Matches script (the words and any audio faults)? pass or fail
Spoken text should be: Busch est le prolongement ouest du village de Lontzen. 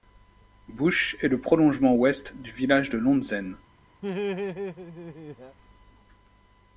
fail